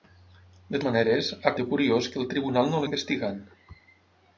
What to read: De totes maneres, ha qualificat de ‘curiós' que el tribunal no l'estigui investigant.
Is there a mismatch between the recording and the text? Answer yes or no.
yes